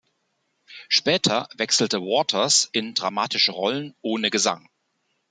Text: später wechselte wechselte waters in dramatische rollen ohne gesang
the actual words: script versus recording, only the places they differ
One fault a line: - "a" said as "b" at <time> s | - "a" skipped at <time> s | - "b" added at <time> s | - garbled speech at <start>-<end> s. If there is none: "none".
- "wechselte" skipped at 2.0 s